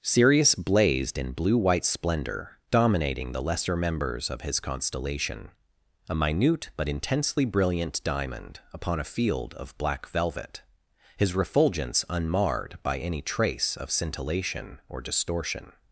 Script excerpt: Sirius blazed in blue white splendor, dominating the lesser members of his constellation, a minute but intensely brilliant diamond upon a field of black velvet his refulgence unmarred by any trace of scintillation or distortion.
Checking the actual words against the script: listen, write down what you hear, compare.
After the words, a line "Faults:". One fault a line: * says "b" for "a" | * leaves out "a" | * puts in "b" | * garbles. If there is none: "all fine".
Sirius blazed in blue white splendor, dominating the lesser members of his constellation, a minute but intensely brilliant diamond upon a field of black velvet his refulgence unmarred by any trace of scintillation or distortion.
Faults:
all fine